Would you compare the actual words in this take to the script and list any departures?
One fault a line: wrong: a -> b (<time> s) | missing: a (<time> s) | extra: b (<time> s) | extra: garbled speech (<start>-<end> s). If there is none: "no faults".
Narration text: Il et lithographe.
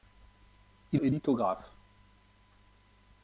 no faults